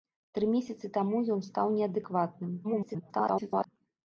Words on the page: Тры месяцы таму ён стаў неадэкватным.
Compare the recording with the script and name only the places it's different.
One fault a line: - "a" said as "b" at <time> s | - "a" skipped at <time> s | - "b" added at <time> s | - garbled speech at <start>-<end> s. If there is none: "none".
- garbled speech at 2.6-3.7 s